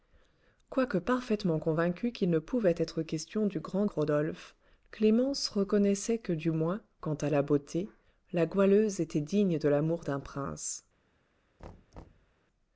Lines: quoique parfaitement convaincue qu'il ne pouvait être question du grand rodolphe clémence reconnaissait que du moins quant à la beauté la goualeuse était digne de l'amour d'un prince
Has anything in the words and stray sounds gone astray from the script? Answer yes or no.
yes